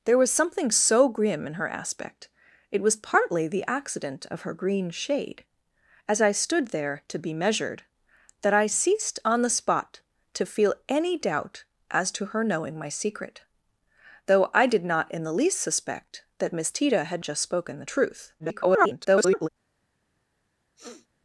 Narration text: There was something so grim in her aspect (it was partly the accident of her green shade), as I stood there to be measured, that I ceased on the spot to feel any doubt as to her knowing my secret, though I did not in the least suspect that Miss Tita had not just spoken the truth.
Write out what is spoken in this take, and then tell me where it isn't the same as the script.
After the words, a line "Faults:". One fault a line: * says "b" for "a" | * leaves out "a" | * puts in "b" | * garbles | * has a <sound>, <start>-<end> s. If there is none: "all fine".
There was something so grim in her aspect (it was partly the accident of her green shade), as I stood there to be measured, that I ceased on the spot to feel any doubt as to her knowing my secret, though I did not in the least suspect that Miss Tita had just spoken the truth. [garbled]
Faults:
* leaves out "not"
* garbles
* has a sniff, 20.8-21.1 s